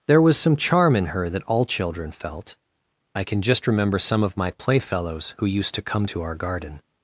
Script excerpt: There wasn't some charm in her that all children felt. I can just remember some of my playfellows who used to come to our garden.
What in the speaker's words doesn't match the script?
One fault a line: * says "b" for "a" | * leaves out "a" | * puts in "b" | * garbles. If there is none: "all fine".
* says "was" for "wasn't"